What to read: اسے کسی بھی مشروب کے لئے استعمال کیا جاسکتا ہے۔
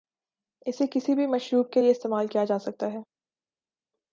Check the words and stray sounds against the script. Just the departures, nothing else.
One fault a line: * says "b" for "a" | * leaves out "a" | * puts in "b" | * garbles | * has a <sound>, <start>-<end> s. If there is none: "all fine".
all fine